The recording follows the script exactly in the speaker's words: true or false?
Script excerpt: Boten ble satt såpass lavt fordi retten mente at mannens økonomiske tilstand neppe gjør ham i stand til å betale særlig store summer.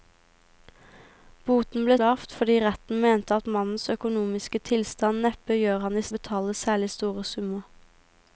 false